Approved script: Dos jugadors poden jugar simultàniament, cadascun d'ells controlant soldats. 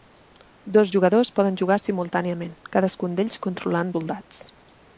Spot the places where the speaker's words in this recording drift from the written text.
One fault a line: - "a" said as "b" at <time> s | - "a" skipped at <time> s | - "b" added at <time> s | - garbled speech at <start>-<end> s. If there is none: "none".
none